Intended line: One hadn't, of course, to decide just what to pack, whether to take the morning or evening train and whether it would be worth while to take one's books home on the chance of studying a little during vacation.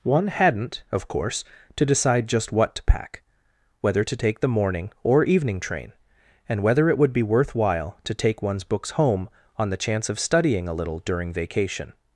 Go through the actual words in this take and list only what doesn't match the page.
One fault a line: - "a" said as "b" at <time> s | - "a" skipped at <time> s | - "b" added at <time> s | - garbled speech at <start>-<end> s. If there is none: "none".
none